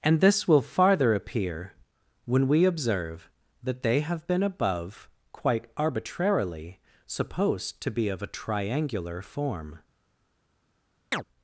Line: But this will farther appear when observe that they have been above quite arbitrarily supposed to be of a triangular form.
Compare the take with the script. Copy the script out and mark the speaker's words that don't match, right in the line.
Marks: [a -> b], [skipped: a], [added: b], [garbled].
[But -> And] this will farther appear when [added: we] observe that they have been above quite arbitrarily supposed to be of a triangular form.